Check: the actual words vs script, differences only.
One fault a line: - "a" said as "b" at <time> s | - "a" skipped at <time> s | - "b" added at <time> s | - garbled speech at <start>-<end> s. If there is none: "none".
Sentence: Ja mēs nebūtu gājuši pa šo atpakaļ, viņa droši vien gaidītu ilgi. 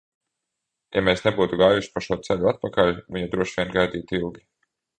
- "ceļu" added at 2.3 s